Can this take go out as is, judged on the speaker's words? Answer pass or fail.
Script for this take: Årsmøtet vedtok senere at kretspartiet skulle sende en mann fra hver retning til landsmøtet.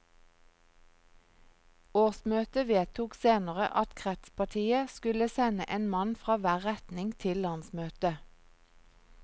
pass